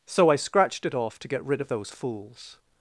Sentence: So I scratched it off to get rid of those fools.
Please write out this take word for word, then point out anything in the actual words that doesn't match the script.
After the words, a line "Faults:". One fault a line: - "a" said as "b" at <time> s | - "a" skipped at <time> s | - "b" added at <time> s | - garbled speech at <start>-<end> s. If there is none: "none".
So I scratched it off to get rid of those fools.
Faults:
none